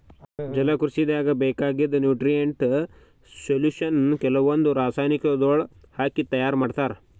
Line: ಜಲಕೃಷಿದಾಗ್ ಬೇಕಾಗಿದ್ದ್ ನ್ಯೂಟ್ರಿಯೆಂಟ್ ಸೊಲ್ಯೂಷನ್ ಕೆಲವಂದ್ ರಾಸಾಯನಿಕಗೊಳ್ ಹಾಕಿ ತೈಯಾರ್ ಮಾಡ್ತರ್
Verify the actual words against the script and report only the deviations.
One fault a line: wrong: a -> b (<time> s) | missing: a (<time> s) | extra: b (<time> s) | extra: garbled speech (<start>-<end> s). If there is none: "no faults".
no faults